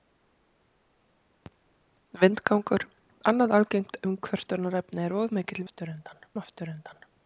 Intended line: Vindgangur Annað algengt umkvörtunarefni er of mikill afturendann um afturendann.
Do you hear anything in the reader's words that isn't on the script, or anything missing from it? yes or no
no